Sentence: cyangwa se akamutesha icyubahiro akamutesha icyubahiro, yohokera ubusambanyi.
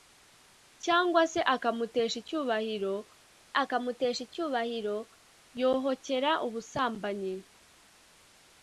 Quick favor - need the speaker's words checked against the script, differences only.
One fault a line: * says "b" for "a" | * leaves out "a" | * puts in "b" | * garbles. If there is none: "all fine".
all fine